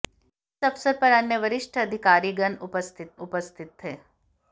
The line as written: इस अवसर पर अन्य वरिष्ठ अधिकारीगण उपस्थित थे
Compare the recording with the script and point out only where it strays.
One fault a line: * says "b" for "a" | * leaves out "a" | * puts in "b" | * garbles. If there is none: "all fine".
* puts in "उपस्थित"